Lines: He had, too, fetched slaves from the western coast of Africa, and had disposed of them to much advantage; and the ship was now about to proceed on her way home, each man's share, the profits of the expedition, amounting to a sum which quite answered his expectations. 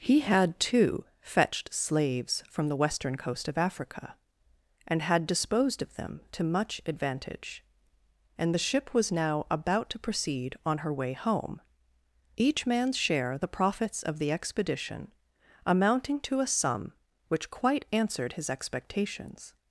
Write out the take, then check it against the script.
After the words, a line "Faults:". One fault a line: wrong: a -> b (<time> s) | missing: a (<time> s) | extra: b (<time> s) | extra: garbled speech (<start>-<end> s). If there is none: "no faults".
He had, too, fetched slaves from the western coast of Africa, and had disposed of them to much advantage; and the ship was now about to proceed on her way home, each man's share, the profits of the expedition, amounting to a sum which quite answered his expectations.
Faults:
no faults